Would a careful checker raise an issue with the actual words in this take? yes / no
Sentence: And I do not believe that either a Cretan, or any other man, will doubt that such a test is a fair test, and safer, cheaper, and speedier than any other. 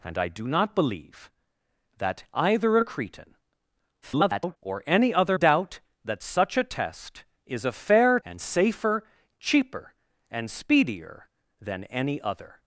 yes